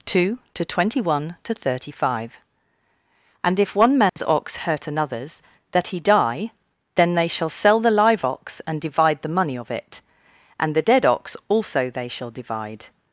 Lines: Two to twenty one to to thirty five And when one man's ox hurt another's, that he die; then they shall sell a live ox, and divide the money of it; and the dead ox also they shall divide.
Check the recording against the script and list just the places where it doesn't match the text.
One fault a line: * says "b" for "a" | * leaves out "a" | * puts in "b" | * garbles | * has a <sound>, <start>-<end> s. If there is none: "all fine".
* leaves out "to"
* says "if" for "when"
* has a dropout, 4.1-4.2 s
* says "the" for "a"